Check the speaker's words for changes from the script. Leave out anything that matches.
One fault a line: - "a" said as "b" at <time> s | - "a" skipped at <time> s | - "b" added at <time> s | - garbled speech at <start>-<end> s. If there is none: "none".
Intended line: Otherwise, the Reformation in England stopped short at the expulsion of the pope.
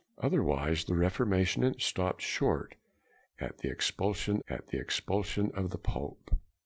- "England" skipped at 1.8 s
- "at the expulsion" added at 4.5 s